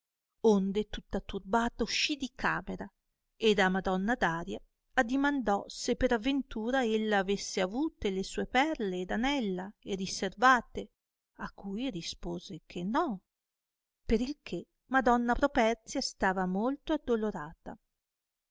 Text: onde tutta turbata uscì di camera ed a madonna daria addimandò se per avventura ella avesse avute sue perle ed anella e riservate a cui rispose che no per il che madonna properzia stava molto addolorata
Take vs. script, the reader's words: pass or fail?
fail